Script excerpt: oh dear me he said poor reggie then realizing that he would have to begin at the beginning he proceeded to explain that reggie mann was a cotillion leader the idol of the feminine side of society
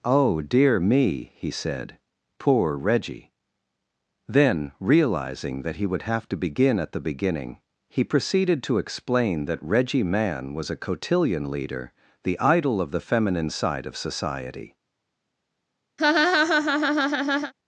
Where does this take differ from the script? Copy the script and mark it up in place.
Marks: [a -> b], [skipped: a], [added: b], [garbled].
oh dear me he said poor reggie then realizing that he would have to begin at the beginning he proceeded to explain that reggie mann was a cotillion leader the idol of the feminine side of society